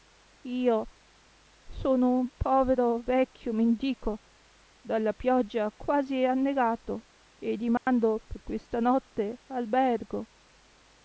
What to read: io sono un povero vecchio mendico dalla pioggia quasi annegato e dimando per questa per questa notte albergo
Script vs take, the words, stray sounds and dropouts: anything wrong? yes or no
yes